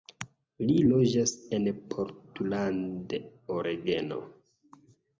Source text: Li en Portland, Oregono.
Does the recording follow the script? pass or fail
fail